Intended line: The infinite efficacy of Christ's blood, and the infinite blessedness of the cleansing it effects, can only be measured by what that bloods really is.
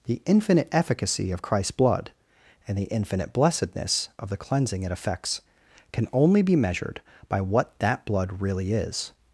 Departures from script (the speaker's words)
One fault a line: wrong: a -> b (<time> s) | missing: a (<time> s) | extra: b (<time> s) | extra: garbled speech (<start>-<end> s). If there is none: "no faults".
wrong: bloods -> blood (8.1 s)